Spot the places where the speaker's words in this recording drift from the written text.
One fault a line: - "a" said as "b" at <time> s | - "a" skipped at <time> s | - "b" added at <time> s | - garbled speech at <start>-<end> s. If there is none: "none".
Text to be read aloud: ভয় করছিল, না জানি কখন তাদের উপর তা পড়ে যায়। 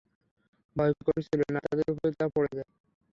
- "জানি কখন" skipped at 1.6 s